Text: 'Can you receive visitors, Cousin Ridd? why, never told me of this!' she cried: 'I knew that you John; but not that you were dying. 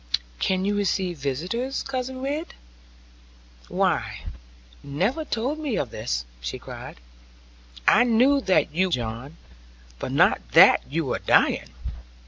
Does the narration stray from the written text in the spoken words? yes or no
no